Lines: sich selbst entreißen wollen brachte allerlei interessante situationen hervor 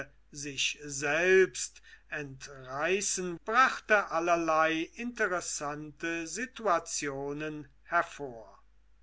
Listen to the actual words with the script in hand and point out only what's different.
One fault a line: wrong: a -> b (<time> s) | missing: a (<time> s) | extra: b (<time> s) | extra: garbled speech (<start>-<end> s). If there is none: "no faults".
missing: wollen (3.4 s)